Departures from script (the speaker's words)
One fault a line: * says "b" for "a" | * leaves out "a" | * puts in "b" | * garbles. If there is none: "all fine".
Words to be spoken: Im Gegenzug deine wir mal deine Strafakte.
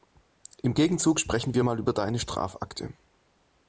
* says "sprechen" for "deine"
* puts in "über"